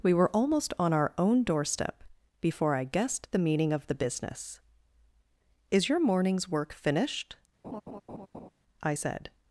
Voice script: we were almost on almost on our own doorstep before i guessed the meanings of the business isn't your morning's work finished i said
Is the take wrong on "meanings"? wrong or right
wrong